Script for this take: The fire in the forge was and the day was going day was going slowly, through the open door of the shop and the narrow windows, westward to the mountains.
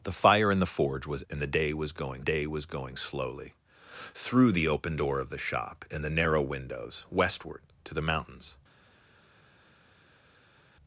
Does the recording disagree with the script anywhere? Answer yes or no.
no